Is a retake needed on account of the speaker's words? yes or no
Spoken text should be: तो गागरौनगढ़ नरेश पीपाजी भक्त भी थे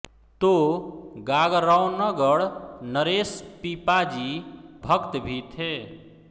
no